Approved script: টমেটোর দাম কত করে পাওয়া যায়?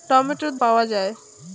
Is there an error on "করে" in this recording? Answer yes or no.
yes